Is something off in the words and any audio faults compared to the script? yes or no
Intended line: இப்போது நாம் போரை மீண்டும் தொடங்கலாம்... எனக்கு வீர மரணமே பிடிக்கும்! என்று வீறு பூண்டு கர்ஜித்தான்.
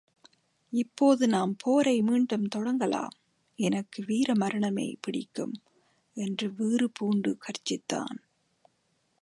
no